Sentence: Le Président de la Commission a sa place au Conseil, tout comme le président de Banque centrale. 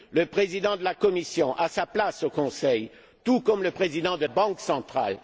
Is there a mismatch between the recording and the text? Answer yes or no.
no